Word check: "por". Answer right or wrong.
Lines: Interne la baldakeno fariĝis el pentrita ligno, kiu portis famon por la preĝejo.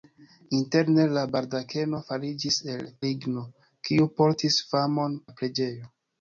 wrong